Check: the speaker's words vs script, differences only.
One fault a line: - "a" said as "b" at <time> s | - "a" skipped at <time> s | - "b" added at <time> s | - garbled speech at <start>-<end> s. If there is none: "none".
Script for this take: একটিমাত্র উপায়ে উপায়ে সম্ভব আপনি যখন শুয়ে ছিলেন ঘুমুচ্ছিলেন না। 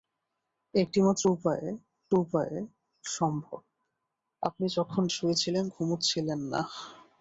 none